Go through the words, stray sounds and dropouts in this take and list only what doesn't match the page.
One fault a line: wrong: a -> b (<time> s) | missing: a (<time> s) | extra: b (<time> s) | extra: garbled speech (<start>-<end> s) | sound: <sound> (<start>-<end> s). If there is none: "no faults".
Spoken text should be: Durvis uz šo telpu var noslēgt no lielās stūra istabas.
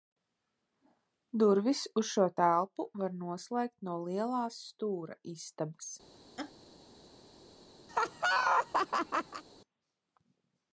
sound: laugh (6.4-6.5 s)
sound: laugh (7.9-9.4 s)